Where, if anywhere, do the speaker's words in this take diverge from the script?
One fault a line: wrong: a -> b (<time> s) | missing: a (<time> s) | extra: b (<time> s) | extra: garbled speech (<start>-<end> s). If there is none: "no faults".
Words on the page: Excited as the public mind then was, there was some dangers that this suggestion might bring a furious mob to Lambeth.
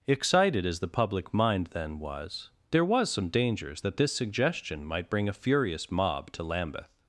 no faults